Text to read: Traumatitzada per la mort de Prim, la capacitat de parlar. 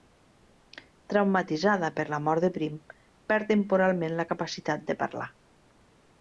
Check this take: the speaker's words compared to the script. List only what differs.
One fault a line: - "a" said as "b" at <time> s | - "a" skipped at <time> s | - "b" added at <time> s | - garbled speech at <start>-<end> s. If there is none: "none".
- "perd temporalment" added at 3.3 s